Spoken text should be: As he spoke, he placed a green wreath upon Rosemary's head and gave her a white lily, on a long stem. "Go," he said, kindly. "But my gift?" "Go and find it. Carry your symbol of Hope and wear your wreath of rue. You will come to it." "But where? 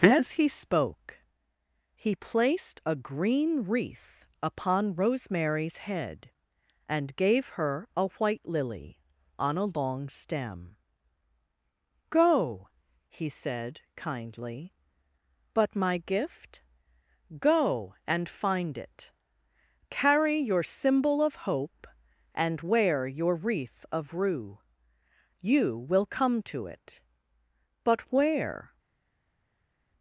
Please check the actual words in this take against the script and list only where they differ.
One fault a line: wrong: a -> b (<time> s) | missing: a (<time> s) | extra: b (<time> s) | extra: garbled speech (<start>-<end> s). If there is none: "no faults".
no faults